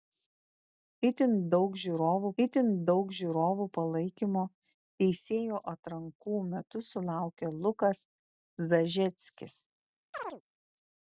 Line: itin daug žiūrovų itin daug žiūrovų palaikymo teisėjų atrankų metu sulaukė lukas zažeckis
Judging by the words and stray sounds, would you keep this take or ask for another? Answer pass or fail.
fail